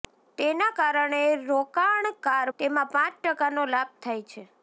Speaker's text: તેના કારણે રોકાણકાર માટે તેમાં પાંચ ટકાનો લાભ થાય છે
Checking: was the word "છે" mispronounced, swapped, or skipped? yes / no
no